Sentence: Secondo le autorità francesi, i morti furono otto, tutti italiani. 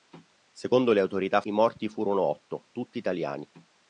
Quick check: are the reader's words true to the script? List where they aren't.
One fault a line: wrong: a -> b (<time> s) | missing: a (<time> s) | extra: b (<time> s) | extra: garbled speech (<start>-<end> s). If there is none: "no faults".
missing: francesi (1.4 s)